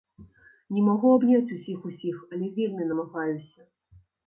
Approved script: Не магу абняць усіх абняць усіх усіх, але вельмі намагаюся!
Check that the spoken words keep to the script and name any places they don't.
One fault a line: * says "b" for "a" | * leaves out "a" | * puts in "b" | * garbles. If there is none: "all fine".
* leaves out "абняць усіх"